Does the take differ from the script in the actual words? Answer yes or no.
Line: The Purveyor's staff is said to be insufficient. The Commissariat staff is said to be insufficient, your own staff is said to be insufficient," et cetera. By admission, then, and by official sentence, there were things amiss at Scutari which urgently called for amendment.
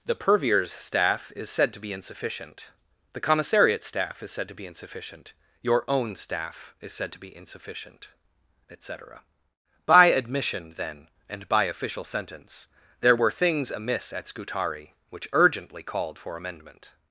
no